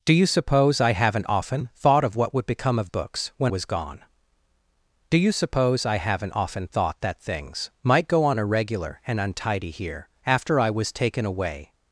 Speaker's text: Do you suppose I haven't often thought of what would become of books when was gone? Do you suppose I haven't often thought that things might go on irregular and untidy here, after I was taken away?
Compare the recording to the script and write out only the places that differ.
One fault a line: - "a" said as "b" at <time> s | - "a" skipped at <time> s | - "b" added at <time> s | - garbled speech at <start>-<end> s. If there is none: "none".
none